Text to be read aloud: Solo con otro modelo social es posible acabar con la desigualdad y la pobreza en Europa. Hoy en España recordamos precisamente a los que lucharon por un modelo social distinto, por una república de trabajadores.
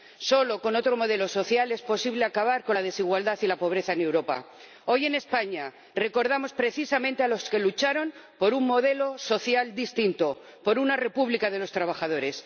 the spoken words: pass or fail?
fail